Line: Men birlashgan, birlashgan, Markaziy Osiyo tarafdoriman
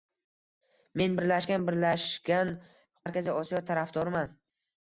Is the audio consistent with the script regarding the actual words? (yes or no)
yes